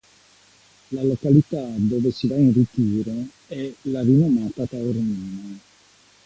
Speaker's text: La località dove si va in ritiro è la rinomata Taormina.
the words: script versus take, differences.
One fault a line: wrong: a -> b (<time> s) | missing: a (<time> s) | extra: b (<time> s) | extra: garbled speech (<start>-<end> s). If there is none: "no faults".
no faults